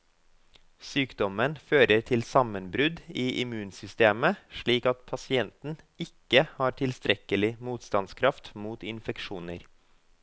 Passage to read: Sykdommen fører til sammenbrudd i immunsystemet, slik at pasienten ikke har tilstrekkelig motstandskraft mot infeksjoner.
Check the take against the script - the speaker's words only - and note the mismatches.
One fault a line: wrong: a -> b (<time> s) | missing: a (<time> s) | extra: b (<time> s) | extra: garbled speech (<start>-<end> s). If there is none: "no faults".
no faults